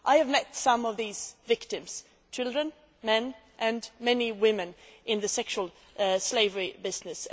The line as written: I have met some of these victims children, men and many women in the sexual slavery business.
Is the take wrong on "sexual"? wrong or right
right